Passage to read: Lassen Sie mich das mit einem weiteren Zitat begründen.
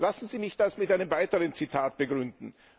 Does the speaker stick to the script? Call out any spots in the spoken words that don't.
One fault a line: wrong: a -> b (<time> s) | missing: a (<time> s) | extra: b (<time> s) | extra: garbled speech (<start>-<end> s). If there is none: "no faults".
no faults